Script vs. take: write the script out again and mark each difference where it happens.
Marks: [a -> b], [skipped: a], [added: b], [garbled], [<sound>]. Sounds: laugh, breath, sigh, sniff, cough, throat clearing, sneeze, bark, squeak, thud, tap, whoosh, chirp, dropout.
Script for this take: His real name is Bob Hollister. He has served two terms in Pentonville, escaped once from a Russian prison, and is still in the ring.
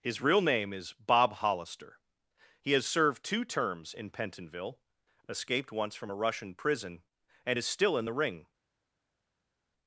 His real name is Bob Hollister. He has served two terms in Pentonville, escaped once from a Russian prison, and is still in the ring.